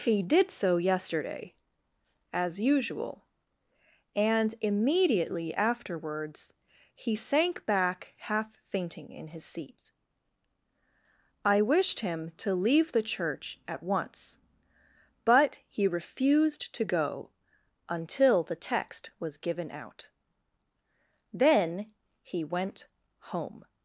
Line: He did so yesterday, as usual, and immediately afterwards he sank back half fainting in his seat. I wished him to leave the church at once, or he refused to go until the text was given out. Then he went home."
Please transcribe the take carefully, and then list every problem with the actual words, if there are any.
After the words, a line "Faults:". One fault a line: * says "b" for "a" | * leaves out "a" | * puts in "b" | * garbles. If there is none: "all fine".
He did so yesterday, as usual, and immediately afterwards he sank back half fainting in his seat. I wished him to leave the church at once, but he refused to go until the text was given out. Then he went home."
Faults:
* says "but" for "or"